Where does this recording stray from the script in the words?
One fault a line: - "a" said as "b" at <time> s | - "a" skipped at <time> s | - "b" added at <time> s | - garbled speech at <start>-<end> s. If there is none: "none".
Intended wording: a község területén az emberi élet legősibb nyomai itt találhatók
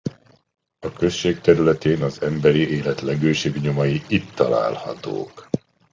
none